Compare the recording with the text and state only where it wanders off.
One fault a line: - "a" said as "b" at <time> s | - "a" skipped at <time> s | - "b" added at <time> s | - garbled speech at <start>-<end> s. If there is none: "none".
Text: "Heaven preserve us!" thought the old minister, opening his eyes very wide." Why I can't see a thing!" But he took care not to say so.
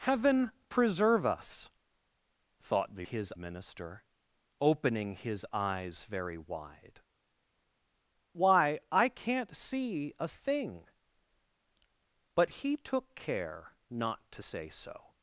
- "old" said as "his" at 3.0 s